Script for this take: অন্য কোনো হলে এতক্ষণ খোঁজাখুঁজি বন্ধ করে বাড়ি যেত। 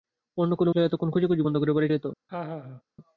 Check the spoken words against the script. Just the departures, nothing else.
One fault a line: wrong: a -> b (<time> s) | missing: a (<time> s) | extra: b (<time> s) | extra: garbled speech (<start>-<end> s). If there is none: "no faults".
no faults